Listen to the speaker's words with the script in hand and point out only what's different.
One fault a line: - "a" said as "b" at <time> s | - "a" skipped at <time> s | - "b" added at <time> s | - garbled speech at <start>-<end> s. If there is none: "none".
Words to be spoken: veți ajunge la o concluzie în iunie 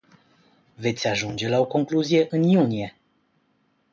none